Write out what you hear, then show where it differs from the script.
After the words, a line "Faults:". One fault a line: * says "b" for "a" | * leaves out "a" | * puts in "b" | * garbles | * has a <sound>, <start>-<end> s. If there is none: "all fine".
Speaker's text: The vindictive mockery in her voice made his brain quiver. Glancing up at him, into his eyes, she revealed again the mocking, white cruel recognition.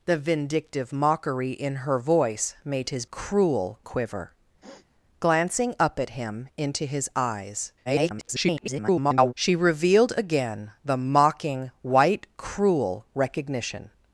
The vindictive mockery in her voice made his cruel quiver. Glancing up at him, into his eyes, [garbled] she revealed again the mocking, white cruel recognition.
Faults:
* says "cruel" for "brain"
* has a sniff, 4.6-4.9 s
* garbles